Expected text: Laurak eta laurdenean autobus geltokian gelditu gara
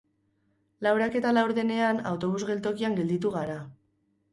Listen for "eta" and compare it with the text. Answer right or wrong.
right